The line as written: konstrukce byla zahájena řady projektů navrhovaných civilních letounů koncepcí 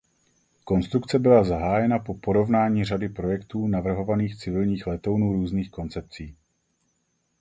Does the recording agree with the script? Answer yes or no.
no